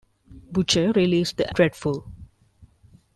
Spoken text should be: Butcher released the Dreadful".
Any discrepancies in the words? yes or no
no